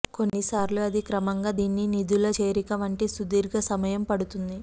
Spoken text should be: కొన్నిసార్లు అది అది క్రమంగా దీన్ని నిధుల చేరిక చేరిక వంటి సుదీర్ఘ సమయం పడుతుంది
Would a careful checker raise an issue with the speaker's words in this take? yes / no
yes